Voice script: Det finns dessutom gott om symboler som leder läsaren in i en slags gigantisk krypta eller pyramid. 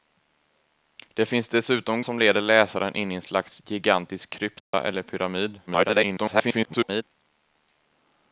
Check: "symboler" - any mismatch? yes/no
yes